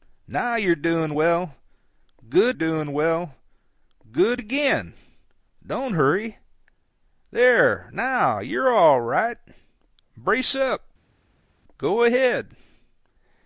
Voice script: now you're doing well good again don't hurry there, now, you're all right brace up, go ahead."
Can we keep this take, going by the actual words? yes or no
no